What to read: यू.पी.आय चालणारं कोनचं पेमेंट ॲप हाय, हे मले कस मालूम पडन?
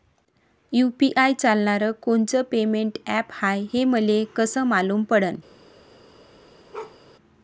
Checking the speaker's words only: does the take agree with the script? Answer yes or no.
yes